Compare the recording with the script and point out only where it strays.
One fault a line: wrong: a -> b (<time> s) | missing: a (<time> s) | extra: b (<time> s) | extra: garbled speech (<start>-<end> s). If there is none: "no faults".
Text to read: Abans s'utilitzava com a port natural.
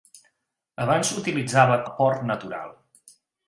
missing: com (1.8 s)